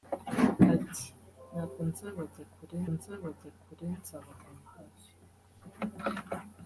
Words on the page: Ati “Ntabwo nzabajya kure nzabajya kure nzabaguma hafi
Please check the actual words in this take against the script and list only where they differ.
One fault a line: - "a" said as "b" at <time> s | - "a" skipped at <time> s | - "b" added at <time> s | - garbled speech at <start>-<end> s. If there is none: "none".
none